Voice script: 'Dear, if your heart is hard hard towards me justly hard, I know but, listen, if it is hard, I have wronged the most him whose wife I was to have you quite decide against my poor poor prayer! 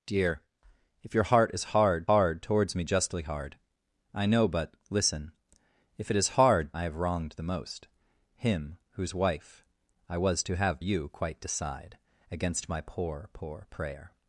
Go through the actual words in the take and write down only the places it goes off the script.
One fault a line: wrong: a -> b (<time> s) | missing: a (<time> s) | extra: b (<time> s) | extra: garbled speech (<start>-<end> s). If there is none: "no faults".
no faults